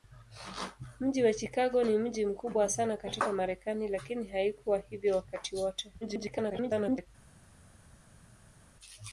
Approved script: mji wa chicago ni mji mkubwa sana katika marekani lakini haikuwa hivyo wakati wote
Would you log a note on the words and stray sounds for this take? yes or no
yes